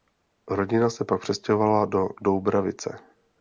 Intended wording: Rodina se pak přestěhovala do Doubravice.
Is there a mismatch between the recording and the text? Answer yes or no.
no